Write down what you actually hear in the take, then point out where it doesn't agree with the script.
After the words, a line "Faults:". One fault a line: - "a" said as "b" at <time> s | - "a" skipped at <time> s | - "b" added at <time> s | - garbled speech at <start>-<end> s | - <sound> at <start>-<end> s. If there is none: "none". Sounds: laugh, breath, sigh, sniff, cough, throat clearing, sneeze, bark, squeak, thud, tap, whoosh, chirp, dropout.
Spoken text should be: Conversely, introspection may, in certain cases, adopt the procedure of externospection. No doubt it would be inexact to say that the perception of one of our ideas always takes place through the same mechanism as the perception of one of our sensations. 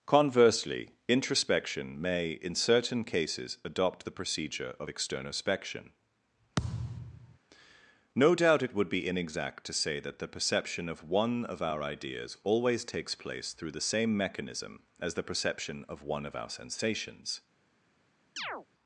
Conversely, introspection may, in certain cases, adopt the procedure of externospection. No doubt it would be inexact to say that the perception of one of our ideas always takes place through the same mechanism as the perception of one of our sensations.
Faults:
- thud at 6.6-7.4 s
- chirp at 18.4-18.7 s